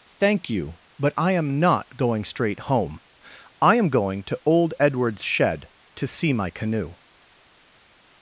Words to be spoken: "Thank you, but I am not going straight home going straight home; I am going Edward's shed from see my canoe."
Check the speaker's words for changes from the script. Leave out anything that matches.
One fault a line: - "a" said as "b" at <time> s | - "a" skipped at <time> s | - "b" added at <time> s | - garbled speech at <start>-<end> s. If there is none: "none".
- "going straight home" skipped at 3.0 s
- "to old" added at 4.2 s
- "from" said as "to" at 6.0 s